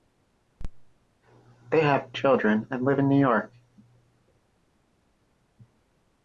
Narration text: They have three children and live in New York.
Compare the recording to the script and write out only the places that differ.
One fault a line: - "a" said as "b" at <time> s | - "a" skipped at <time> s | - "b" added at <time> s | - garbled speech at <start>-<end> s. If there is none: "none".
- "three" skipped at 2.1 s